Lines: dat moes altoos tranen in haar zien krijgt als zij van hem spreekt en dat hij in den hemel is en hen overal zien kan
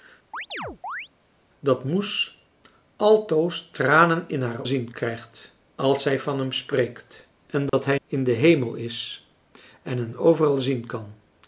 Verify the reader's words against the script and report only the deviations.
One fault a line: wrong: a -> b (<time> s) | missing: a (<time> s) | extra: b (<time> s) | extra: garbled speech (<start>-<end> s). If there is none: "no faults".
no faults